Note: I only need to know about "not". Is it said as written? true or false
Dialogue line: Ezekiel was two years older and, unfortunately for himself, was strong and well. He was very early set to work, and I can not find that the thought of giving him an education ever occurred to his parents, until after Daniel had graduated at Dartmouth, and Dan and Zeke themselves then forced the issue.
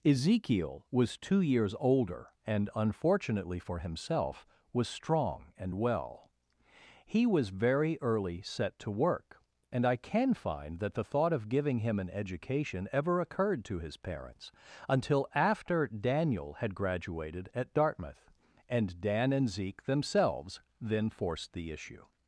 false